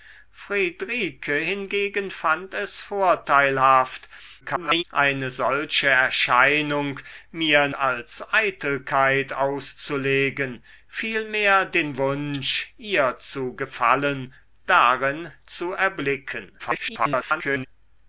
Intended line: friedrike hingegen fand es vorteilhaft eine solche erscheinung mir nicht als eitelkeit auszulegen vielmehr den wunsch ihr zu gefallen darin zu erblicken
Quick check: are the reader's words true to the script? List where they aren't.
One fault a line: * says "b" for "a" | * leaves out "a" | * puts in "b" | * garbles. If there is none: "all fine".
* garbles
* leaves out "nicht"
* garbles